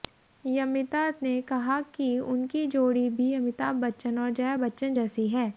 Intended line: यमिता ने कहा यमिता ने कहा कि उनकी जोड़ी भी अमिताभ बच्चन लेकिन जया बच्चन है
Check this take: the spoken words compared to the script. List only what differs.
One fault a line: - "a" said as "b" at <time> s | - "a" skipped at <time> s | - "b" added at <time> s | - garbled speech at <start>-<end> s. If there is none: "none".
- "यमिता ने कहा" skipped at 1.8 s
- "लेकिन" said as "और" at 4.2 s
- "जैसी" added at 4.9 s